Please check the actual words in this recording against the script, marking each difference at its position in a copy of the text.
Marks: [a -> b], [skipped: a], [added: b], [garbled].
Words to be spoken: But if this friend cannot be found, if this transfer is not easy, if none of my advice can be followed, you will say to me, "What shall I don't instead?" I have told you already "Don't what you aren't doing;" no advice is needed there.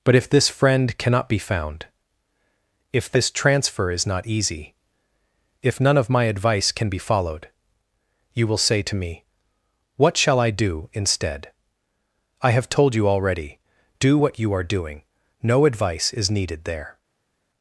But if this friend cannot be found, if this transfer is not easy, if none of my advice can be followed, you will say to me, "What shall I [don't -> do] instead?" I have told you already ["Don't -> Do] what you [aren't -> are] doing;" no advice is needed there.